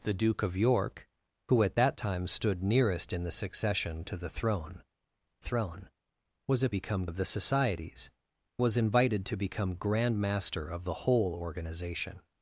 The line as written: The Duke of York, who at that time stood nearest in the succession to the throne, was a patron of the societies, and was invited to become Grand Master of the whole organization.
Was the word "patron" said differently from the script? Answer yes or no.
yes